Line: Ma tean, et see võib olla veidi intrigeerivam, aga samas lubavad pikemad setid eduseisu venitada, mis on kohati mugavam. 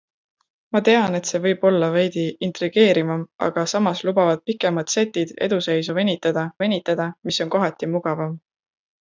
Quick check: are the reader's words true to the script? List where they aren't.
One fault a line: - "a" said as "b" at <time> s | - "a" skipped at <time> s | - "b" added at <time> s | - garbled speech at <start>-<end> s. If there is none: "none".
- "venitada" added at 6.6 s